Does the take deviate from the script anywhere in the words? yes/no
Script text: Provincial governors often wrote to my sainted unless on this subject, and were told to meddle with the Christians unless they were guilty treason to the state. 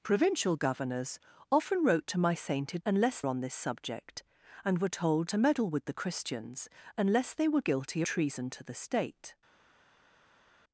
no